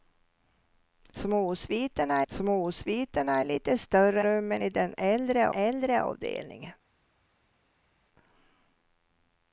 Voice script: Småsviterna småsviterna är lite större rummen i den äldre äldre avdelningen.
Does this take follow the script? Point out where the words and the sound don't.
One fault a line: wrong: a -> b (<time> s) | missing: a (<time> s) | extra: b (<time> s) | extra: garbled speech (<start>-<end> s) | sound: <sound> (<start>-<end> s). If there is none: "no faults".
no faults